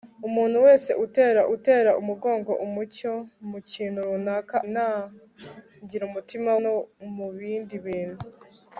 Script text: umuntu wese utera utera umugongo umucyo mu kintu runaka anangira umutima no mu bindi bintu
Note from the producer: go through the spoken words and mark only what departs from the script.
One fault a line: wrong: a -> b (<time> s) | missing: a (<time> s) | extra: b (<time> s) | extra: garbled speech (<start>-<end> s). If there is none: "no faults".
no faults